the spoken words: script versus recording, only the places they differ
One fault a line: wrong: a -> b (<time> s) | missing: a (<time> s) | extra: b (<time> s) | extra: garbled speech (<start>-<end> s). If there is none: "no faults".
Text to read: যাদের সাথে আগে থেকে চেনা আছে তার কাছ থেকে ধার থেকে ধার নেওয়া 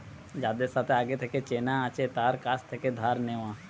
missing: থেকে ধার (3.2 s)